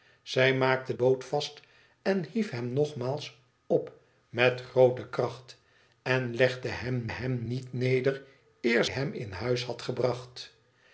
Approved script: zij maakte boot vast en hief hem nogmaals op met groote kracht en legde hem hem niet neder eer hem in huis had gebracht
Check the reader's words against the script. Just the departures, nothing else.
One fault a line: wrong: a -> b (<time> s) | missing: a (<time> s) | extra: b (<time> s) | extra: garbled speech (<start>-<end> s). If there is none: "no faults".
no faults